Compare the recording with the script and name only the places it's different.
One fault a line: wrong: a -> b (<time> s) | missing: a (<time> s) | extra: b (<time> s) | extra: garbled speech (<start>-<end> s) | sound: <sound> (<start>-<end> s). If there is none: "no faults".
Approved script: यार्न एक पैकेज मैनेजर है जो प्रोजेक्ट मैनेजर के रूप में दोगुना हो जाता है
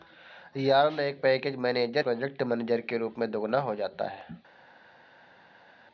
missing: है जो (2.0 s)